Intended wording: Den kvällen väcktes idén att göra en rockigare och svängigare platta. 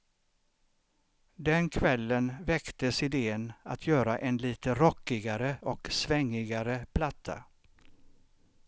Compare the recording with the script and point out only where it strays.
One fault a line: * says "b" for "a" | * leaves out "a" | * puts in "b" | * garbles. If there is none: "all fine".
* puts in "lite"